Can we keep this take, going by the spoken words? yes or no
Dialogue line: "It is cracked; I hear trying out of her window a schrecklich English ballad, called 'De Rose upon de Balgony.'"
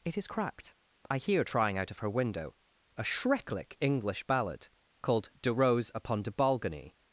yes